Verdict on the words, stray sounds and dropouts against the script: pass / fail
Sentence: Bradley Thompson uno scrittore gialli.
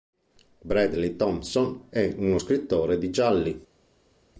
fail